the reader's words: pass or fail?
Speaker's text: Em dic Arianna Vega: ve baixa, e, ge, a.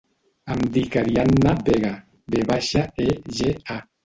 pass